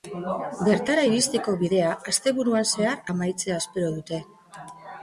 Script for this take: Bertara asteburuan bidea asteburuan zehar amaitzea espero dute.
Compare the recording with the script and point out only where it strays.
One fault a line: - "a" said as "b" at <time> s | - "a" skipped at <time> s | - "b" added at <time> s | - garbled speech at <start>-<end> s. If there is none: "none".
- "asteburuan" said as "iristeko" at 1.1 s